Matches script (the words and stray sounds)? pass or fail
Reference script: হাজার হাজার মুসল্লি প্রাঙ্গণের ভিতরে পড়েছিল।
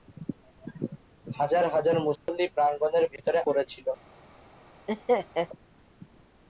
fail